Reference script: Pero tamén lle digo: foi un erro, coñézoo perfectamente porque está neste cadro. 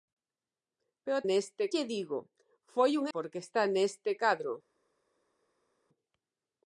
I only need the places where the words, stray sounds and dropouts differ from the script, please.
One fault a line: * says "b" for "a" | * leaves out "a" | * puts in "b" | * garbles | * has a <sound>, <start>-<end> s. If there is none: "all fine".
* says "neste" for "tamén"
* leaves out "erro coñézoo perfectamente"